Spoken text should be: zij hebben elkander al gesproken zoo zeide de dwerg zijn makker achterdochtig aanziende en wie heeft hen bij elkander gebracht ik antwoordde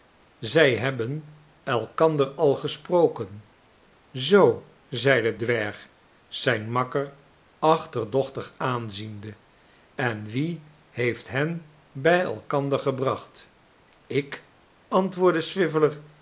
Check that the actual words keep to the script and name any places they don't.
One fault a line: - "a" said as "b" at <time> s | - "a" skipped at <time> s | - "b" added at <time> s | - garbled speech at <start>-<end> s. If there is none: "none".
- "de" skipped at 5.3 s